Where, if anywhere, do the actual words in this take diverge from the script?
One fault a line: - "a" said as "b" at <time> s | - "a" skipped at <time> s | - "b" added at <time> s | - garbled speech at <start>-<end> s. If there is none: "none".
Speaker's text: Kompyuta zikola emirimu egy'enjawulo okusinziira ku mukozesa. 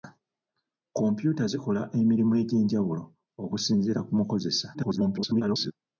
- garbled speech at 4.7-5.7 s